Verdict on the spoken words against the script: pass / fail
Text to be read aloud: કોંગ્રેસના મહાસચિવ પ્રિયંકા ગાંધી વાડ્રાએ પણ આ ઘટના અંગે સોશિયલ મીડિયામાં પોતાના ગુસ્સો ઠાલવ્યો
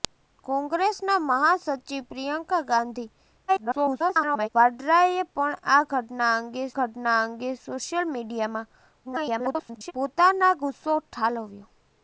fail